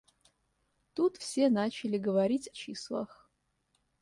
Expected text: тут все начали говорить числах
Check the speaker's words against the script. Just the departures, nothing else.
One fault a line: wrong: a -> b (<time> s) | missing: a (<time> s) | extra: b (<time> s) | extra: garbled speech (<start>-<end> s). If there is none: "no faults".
no faults